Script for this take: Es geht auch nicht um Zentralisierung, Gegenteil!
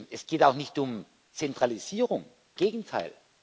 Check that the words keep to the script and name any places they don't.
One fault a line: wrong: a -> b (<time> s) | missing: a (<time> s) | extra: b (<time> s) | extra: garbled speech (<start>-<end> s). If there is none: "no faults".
no faults